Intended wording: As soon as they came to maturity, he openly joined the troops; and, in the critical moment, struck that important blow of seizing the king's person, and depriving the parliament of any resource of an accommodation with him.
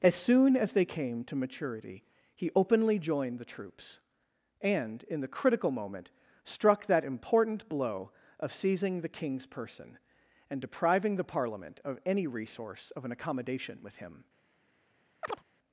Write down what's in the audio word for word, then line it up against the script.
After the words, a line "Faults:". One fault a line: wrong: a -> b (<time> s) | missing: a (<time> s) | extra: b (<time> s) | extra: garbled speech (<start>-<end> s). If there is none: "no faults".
As soon as they came to maturity, he openly joined the troops; and, in the critical moment, struck that important blow of seizing the king's person, and depriving the parliament of any resource of an accommodation with him.
Faults:
no faults